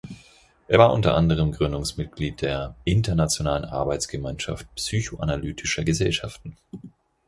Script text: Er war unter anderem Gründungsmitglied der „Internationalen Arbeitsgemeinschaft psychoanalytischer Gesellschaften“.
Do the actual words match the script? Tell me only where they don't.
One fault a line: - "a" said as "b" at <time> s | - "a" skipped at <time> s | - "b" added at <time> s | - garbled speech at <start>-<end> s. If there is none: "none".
none